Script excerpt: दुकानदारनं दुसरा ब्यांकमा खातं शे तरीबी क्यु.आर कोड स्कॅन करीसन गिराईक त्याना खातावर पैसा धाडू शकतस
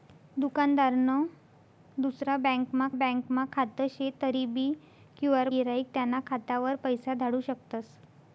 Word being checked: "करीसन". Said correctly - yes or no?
no